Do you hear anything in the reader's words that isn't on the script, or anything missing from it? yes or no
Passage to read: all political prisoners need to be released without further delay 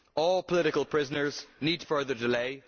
yes